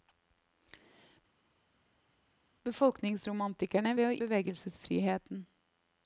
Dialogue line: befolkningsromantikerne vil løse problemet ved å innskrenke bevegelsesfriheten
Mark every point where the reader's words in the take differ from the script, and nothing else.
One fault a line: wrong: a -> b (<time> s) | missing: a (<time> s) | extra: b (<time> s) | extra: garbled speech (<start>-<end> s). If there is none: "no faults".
missing: vil løse problemet (3.9 s)
missing: innskrenke (4.2 s)